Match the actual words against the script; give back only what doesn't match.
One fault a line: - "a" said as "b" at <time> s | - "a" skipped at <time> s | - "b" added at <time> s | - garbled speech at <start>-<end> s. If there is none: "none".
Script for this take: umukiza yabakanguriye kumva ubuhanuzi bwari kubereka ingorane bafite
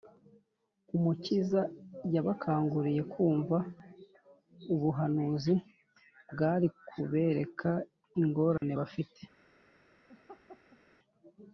none